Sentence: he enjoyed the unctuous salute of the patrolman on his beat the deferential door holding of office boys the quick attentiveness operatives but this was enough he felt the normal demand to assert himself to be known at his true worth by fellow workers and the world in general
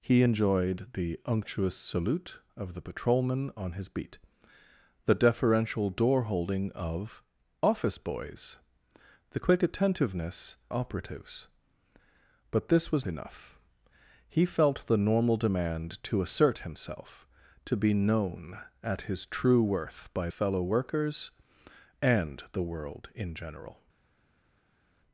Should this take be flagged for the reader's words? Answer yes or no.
no